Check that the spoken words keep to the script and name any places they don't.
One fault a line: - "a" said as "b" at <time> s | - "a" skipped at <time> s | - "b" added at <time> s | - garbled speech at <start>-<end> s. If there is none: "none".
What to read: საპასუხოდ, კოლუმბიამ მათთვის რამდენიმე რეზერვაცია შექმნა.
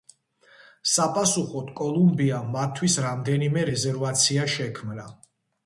none